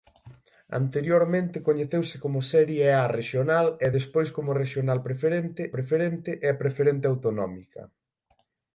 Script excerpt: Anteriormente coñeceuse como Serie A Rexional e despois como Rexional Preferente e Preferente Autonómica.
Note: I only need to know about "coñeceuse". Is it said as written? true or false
true